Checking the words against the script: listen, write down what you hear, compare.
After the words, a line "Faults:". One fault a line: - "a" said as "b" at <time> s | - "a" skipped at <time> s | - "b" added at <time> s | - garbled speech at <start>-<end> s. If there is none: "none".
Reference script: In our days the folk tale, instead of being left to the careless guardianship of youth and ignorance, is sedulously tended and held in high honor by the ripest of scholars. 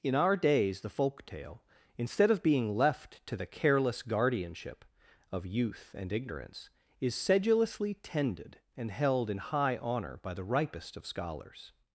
In our days the folk tale, instead of being left to the careless guardianship of youth and ignorance, is sedulously tended and held in high honor by the ripest of scholars.
Faults:
none